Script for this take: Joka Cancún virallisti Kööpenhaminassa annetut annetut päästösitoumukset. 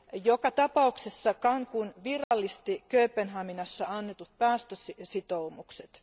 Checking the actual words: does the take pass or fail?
fail